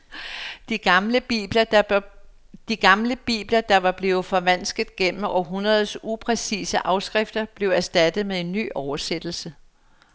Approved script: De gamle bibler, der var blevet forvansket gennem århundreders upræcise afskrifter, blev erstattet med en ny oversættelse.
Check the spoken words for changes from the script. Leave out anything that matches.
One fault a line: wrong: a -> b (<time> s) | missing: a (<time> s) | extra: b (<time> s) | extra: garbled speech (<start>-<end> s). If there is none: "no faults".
no faults